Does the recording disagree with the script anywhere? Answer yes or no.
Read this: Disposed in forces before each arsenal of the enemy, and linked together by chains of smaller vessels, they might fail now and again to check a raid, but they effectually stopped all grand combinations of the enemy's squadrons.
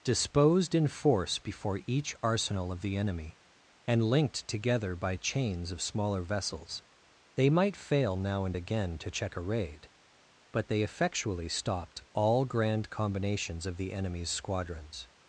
yes